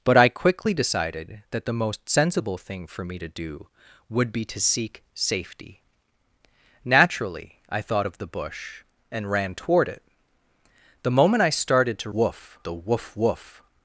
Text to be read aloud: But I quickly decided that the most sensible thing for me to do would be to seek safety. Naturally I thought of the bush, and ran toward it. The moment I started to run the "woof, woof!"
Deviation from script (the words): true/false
true